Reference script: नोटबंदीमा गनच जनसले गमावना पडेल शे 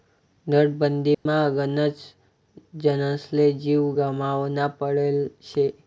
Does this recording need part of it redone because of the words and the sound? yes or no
yes